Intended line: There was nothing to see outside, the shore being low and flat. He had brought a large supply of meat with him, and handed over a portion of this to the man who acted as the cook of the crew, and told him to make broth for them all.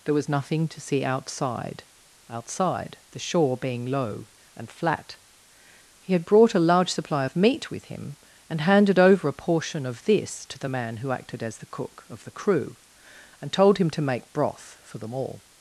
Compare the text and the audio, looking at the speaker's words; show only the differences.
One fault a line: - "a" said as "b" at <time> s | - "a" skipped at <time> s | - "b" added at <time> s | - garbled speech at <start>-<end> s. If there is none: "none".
- "outside" added at 2.3 s